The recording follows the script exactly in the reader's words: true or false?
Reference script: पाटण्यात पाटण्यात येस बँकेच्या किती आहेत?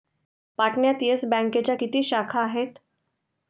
false